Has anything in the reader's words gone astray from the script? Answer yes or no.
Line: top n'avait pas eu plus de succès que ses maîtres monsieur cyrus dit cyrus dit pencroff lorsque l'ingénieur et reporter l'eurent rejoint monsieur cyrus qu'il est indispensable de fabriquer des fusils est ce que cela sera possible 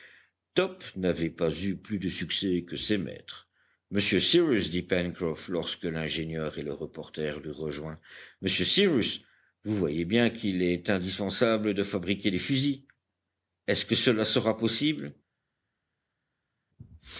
yes